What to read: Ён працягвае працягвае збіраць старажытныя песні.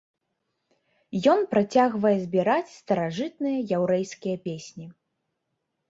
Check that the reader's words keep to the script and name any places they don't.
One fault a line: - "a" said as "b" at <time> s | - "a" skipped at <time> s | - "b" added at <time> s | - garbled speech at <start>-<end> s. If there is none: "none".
- "працягвае" skipped at 2.1 s
- "яўрэйскія" added at 3.8 s